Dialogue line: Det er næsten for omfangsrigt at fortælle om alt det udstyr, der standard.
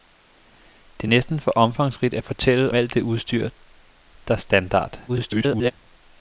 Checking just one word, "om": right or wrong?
wrong